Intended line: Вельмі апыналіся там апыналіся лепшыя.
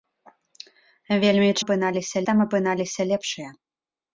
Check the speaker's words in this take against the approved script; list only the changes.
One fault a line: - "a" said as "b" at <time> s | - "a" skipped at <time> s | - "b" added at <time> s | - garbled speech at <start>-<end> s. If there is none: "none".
none